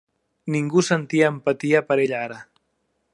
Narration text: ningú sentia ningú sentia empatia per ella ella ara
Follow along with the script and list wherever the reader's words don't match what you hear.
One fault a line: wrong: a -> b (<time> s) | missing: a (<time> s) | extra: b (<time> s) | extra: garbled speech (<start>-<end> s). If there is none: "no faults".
missing: ningú sentia (1.3 s)
missing: ella (2.2 s)